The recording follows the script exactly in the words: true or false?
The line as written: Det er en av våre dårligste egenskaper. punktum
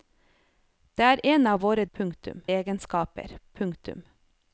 false